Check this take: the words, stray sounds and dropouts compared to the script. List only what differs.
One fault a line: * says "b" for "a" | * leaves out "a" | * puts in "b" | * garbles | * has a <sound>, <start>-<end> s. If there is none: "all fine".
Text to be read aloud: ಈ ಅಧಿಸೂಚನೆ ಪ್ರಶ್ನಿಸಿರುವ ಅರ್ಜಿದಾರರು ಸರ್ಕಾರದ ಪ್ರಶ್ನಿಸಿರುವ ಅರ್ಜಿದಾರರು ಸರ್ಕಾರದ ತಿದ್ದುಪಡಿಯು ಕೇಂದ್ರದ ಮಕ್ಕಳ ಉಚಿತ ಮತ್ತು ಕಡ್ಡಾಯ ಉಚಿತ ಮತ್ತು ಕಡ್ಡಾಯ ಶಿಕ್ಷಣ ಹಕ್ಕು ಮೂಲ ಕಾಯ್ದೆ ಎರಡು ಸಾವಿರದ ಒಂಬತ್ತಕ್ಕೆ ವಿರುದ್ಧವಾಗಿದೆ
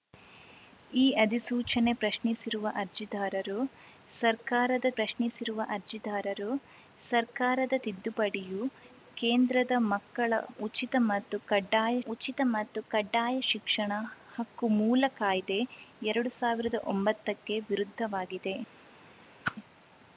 * has a whoosh, 19.4-19.6 s